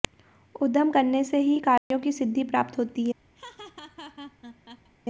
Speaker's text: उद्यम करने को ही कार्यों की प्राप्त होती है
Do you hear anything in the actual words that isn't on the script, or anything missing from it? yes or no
yes